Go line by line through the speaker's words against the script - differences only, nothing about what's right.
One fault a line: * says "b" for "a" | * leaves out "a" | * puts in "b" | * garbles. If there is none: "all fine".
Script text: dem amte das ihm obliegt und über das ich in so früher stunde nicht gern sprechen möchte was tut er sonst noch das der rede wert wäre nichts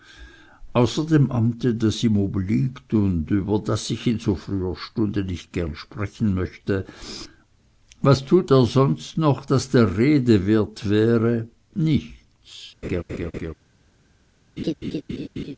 all fine